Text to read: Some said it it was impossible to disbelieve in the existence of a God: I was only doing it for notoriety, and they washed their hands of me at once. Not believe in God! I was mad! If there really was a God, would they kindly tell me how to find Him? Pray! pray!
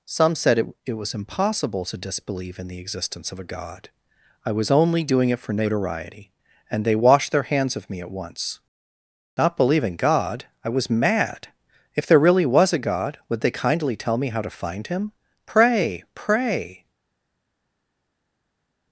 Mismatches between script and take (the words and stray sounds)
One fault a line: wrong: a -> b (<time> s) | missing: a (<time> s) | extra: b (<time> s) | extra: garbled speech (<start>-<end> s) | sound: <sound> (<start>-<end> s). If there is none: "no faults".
no faults